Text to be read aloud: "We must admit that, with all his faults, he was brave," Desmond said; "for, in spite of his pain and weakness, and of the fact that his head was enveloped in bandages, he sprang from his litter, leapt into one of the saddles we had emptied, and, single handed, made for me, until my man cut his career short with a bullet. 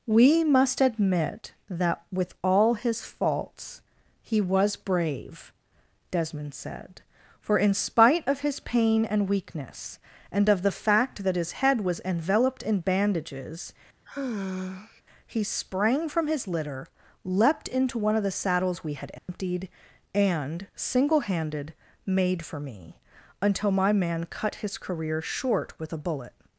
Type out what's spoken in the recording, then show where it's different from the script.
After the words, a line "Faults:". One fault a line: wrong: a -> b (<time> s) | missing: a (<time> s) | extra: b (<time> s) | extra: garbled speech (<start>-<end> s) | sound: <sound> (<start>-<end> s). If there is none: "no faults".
"We must admit that, with all his faults, he was brave," Desmond said; "for, in spite of his pain and weakness, and of the fact that his head was enveloped in bandages, he sprang from his litter, leapt into one of the saddles we had emptied, and, single handed, made for me, until my man cut his career short with a bullet.
Faults:
sound: sigh (14.1-15.0 s)
sound: dropout (19.2-19.3 s)